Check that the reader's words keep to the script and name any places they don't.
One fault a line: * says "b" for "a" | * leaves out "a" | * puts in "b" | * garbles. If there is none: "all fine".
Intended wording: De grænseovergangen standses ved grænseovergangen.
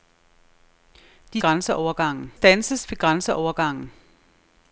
all fine